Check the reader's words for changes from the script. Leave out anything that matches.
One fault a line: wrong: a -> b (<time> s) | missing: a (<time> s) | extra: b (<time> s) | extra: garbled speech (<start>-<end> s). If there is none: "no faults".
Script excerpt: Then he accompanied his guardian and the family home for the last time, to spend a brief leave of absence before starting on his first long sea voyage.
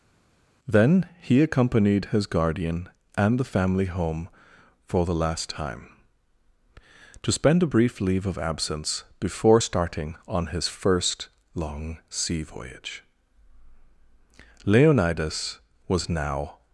extra: Leonidas was now (14.6 s)